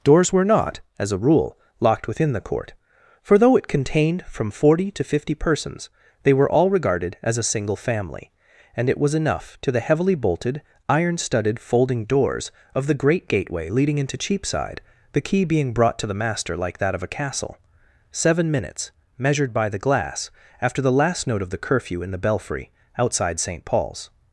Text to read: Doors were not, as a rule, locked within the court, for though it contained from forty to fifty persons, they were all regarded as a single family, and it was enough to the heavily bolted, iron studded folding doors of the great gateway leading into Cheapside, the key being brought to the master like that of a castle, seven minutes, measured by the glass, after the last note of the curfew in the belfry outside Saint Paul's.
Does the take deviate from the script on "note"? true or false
false